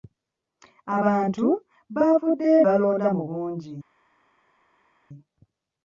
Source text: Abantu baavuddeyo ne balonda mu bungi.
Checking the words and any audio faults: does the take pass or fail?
fail